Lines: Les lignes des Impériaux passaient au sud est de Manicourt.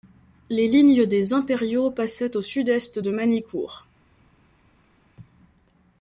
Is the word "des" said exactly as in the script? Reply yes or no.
yes